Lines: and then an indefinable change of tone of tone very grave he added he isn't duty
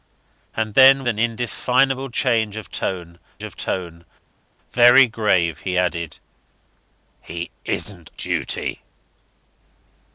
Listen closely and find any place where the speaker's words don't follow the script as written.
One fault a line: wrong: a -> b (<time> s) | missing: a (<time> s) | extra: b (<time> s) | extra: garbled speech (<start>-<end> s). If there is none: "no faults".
no faults